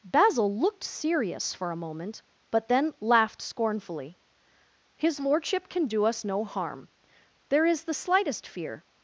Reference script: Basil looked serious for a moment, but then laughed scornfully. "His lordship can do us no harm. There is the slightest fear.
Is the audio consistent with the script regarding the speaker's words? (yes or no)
yes